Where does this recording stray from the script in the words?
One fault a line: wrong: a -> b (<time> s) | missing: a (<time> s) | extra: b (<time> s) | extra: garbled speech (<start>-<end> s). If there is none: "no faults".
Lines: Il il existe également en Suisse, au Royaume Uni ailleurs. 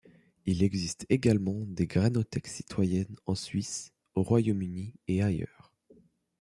missing: il (0.6 s)
extra: des grainothèques citoyennes (1.7 s)
extra: et (5.1 s)